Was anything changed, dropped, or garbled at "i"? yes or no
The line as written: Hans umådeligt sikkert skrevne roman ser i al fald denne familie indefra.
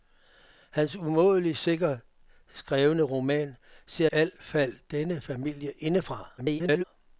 yes